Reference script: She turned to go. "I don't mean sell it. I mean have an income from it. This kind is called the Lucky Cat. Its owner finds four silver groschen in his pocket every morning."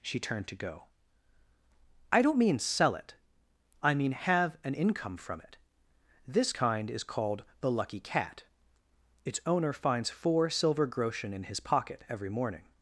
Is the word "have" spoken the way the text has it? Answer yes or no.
yes